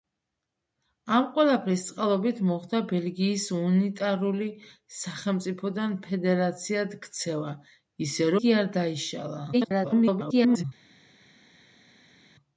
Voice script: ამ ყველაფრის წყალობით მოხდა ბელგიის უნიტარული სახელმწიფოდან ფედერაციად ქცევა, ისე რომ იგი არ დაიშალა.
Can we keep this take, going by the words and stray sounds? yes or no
no